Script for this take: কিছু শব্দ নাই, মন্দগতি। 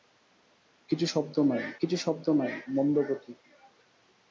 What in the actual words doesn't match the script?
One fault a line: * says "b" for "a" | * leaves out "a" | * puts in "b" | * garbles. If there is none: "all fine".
* puts in "কিছু শব্দ নাই"